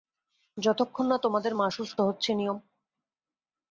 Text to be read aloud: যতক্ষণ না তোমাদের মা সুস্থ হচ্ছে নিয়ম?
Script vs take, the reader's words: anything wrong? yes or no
no